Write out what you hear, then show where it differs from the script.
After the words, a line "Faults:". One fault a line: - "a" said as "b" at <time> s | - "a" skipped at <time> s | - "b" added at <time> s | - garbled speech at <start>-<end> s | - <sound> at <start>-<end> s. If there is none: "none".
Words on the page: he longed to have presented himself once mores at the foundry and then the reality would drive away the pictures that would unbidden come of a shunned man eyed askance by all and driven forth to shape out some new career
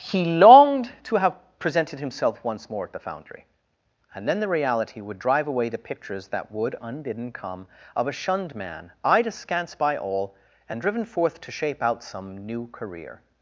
he longed to have presented himself once more at the foundry and then the reality would drive away the pictures that would unbidden come of a shunned man eyed askance by all and driven forth to shape out some new career
Faults:
- "mores" said as "more" at 2.7 s